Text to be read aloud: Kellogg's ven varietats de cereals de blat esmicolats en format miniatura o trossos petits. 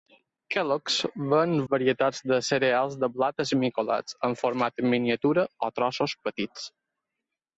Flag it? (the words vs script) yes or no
no